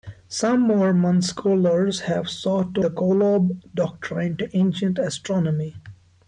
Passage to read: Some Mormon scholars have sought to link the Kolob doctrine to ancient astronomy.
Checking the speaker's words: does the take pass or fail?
fail